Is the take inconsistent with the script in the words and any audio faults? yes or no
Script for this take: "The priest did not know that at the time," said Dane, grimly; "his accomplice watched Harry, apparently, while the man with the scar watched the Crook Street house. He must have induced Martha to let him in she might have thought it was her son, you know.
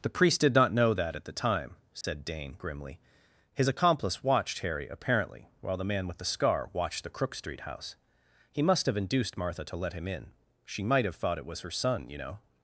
yes